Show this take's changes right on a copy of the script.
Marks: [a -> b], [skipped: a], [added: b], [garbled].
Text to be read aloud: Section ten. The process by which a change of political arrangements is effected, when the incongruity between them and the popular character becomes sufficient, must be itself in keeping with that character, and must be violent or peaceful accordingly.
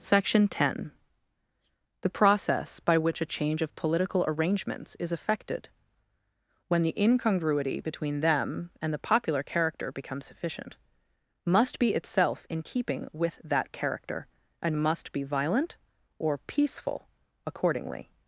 Section ten. The process by which a change of political arrangements is effected, when the incongruity between them and the popular character becomes sufficient, must be itself in keeping with that character, and must be violent or peaceful accordingly.